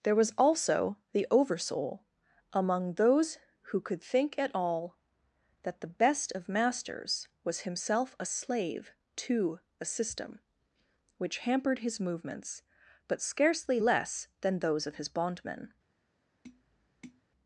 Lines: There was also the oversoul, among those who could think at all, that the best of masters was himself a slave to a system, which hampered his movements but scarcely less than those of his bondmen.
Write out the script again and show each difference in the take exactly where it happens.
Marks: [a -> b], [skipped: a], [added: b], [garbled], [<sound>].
There was also the oversoul, among those who could think at all, that the best of masters was himself a slave to a system, which hampered his movements but scarcely less than those of his bondmen. [tap]